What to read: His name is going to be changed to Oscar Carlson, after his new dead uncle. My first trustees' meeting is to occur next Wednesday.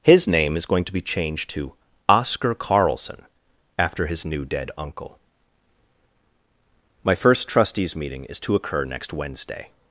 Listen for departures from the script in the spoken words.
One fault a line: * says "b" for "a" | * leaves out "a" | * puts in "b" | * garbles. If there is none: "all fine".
all fine